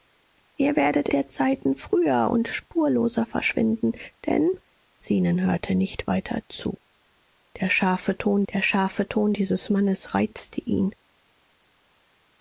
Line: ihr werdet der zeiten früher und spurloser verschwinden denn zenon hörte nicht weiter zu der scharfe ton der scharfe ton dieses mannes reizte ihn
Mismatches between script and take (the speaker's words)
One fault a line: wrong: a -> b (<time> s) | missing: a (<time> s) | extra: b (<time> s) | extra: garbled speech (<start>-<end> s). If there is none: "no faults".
no faults